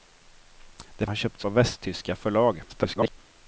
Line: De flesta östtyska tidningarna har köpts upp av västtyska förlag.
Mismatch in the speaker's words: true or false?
true